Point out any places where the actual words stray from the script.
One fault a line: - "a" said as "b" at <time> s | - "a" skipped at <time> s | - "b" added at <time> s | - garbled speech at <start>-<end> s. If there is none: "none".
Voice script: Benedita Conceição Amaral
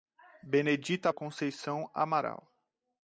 none